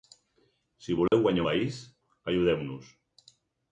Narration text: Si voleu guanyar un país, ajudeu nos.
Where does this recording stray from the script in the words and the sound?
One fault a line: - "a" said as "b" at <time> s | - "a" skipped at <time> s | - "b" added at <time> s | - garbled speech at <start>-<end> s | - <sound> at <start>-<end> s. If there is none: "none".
- dropout at 1.1-1.1 s
- "un" skipped at 1.4 s